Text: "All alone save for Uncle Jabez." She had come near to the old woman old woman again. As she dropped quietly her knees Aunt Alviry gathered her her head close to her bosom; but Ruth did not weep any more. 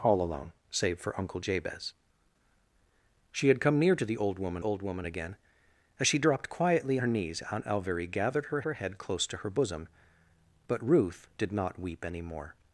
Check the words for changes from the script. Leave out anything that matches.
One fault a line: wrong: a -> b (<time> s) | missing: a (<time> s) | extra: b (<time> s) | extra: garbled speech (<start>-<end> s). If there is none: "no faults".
no faults